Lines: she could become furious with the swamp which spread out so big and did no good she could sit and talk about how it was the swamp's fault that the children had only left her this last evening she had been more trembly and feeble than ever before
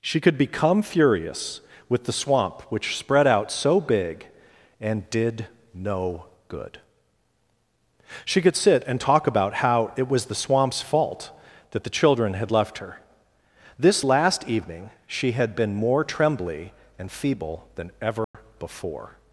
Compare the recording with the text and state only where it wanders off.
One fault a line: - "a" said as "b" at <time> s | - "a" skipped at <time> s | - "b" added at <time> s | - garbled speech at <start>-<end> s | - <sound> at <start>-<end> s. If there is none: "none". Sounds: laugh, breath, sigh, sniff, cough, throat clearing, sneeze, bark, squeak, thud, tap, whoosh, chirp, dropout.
- "only" skipped at 12.5 s
- dropout at 18.2-18.3 s